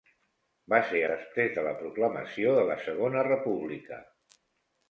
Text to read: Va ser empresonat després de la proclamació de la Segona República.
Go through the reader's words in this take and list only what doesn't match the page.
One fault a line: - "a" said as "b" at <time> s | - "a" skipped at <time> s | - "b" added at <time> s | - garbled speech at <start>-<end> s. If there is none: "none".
- "empresonat" skipped at 1.0 s